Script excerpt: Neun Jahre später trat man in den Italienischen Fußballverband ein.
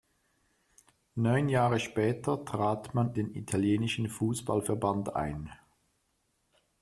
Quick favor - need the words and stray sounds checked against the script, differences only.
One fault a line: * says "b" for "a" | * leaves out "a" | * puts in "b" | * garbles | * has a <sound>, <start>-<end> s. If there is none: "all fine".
* leaves out "in"